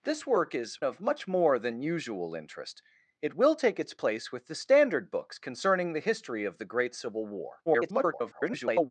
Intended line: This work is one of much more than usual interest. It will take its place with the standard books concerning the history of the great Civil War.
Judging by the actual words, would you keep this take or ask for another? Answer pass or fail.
fail